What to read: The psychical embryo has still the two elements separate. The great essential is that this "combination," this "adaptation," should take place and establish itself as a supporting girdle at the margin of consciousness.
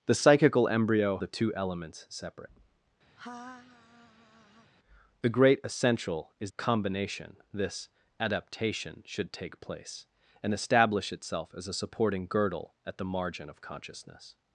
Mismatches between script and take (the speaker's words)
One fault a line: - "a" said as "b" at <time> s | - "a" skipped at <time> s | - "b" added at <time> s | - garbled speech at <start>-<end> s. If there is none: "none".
- "has still" skipped at 1.2 s
- "that this" skipped at 6.5 s